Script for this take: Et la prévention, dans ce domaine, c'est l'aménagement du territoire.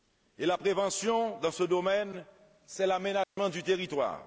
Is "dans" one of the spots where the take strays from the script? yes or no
no